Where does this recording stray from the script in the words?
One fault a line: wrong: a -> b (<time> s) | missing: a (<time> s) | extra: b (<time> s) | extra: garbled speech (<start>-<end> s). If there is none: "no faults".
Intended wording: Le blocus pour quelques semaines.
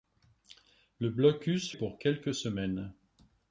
no faults